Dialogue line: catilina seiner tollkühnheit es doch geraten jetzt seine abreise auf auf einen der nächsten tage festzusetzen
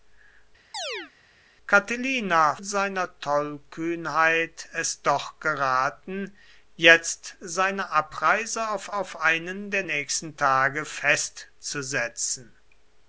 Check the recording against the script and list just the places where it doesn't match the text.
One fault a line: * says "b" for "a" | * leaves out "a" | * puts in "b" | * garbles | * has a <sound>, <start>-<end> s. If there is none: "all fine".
* has a chirp, 0.7-1.1 s